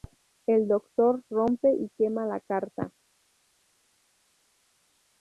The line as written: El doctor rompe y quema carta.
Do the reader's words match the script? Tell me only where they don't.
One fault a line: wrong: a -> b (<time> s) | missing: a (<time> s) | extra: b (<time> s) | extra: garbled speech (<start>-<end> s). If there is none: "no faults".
extra: la (2.2 s)